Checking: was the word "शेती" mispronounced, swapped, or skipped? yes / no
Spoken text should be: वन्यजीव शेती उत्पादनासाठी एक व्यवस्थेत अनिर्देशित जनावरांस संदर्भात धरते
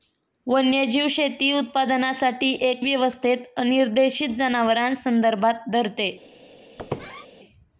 no